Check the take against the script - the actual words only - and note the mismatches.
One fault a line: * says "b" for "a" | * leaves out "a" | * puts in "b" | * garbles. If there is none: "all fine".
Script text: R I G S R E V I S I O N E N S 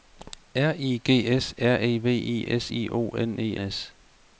* leaves out "N"